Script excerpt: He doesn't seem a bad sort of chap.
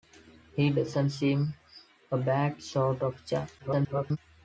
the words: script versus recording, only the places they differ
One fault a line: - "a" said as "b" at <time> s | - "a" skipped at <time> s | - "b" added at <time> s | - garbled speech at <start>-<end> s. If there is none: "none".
- garbled speech at 3.6-4.2 s